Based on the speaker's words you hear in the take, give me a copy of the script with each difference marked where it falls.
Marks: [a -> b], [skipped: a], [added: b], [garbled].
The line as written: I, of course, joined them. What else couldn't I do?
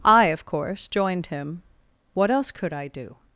I, of course, joined [them. -> him] What else [couldn't -> could] I do?